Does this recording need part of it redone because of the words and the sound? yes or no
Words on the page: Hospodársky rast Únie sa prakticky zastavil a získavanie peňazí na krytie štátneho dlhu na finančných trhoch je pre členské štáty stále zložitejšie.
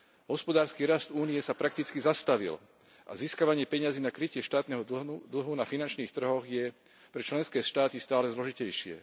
no